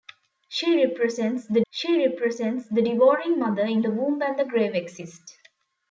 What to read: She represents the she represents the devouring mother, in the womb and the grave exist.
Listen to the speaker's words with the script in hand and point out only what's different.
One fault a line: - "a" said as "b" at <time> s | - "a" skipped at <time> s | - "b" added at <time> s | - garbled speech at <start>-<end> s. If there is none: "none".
none